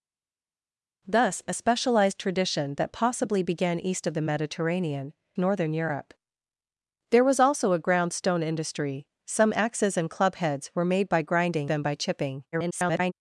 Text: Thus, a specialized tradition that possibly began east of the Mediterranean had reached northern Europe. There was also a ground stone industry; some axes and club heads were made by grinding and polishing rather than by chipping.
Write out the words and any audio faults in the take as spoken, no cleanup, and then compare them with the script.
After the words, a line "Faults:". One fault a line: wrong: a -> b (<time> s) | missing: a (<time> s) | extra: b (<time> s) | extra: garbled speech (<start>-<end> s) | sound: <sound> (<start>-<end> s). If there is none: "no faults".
Thus, a specialized tradition that possibly began east of the Mediterranean northern Europe. There was also a ground stone industry; some axes and club heads were made by grinding than by chipping. [garbled]
Faults:
missing: had reached (5.1 s)
missing: and polishing rather (11.7 s)
extra: garbled speech (12.5-13.1 s)